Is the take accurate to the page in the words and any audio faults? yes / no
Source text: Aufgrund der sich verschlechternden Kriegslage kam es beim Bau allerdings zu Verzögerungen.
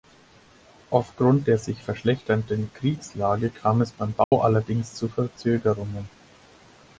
no